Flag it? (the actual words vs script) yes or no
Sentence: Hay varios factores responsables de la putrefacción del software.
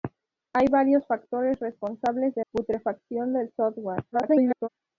yes